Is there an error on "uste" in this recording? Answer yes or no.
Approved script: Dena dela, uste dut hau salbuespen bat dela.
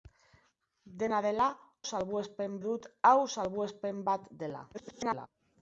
yes